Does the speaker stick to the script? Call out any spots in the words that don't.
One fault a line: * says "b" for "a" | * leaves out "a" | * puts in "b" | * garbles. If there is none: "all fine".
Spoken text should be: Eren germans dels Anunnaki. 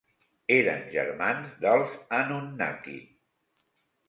all fine